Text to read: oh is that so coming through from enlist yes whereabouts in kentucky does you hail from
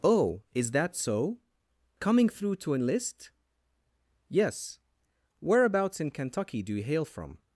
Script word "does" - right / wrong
wrong